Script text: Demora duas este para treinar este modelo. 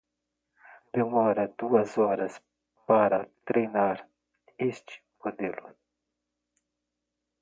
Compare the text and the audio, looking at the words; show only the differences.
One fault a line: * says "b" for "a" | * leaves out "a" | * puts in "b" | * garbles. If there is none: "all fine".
* says "horas" for "este"